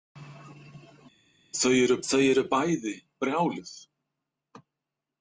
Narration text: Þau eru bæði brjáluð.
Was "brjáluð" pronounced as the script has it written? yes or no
yes